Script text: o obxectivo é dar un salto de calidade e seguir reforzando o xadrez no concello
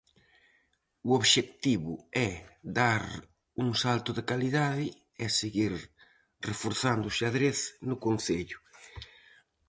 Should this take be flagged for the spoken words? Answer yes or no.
no